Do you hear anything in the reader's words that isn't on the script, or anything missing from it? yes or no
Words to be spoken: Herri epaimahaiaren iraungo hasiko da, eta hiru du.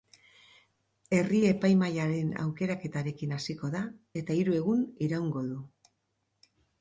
yes